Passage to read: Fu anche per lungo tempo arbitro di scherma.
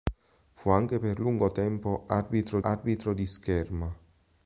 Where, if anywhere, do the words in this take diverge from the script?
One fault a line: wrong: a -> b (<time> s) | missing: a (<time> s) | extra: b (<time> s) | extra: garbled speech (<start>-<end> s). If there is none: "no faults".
extra: arbitro (2.6 s)